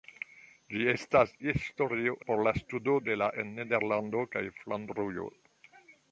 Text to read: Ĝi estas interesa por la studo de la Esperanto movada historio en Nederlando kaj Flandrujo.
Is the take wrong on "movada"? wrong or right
wrong